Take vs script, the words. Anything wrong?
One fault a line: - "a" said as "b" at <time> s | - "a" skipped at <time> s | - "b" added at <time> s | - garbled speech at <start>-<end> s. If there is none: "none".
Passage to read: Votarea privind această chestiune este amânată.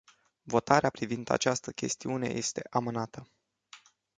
none